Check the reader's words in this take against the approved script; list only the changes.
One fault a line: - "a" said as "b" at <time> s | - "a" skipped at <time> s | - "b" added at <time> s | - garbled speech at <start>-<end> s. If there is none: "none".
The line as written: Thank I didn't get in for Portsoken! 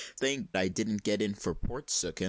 none